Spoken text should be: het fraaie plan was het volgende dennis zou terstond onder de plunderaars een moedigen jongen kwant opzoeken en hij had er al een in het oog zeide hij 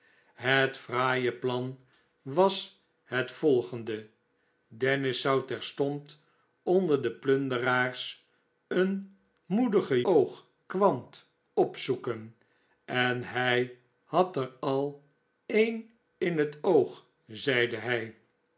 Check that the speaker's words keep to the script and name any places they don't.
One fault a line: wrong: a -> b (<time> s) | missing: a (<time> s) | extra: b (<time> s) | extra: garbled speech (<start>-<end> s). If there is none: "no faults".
wrong: jongen -> oog (10.0 s)